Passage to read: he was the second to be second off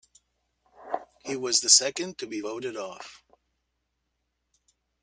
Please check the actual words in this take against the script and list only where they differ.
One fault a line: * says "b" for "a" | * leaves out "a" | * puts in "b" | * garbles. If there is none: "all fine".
* says "voted" for "second"